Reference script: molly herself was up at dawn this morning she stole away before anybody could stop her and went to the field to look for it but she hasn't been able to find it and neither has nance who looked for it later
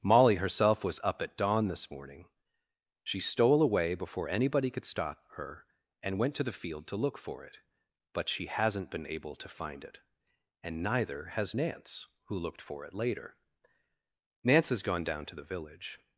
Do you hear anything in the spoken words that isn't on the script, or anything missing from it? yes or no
yes